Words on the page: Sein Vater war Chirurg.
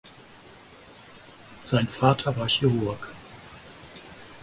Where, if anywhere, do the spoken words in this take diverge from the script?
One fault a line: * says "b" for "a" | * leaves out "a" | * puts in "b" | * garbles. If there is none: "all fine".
all fine